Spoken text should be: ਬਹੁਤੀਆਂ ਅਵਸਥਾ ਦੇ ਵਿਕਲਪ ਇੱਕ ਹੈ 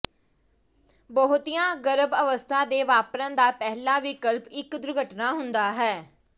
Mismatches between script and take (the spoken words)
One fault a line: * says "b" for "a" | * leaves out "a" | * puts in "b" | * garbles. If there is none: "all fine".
* puts in "ਗਰਭ"
* puts in "ਵਾਪਰਨ ਦਾ ਪਹਿਲਾ"
* puts in "ਦੁਰਘਟਨਾ ਹੁੰਦਾ"